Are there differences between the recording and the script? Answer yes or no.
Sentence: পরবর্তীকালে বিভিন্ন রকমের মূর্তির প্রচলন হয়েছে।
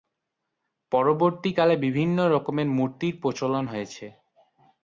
no